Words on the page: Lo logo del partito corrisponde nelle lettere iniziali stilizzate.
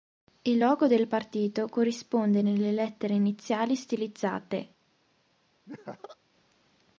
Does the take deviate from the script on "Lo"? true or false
true